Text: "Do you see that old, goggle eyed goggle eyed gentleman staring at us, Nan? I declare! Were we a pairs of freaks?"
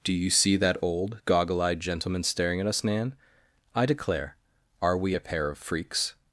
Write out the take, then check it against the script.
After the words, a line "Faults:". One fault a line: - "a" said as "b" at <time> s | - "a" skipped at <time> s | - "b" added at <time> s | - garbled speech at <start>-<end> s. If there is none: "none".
"Do you see that old, goggle eyed gentleman staring at us, Nan? I declare! Are we a pair of freaks?"
Faults:
- "goggle eyed" skipped at 1.8 s
- "Were" said as "Are" at 4.8 s
- "pairs" said as "pair" at 5.2 s